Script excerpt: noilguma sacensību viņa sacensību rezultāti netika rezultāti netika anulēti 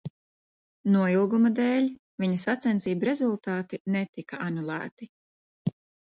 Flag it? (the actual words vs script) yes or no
yes